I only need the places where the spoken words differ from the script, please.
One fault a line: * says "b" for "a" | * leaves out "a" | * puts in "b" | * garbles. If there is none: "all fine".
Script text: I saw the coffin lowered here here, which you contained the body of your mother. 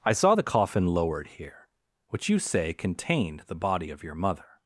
* leaves out "here"
* puts in "say"